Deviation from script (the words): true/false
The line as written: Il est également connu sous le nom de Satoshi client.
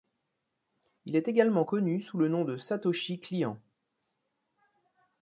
false